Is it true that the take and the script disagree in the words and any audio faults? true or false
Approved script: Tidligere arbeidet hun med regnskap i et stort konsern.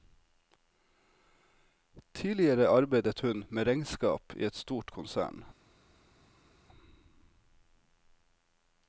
false